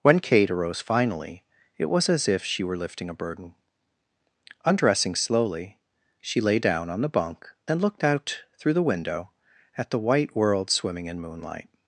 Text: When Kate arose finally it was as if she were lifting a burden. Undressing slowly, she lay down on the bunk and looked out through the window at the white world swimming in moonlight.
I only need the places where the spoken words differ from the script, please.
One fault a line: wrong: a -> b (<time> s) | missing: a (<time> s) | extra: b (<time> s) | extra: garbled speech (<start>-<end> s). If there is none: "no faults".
no faults